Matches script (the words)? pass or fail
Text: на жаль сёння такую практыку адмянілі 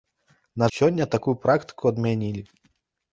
fail